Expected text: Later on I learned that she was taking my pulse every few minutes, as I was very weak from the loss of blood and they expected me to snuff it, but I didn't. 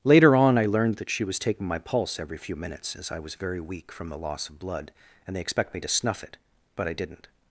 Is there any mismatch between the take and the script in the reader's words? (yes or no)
yes